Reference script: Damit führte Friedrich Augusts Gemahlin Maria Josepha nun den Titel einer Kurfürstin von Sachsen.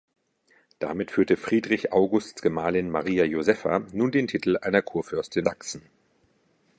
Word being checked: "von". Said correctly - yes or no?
no